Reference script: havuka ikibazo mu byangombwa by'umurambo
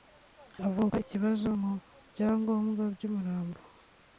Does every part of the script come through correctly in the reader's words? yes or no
yes